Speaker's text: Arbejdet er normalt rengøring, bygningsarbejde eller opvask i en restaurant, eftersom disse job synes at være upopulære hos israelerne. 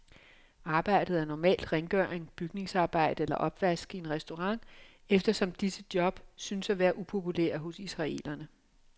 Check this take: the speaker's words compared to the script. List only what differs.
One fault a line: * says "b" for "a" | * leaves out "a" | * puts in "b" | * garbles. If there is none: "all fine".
all fine